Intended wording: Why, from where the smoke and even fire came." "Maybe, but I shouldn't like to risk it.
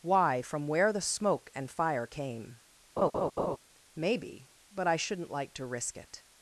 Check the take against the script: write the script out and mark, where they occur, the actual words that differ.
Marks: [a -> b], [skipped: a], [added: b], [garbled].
Why, from where the smoke and [skipped: even] fire came." "Maybe, but I shouldn't like to risk it.